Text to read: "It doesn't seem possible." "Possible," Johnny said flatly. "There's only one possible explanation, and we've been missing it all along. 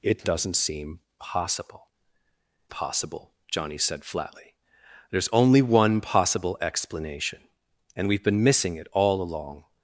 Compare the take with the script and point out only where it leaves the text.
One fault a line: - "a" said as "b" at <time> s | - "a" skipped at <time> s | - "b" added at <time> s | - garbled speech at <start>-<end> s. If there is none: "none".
none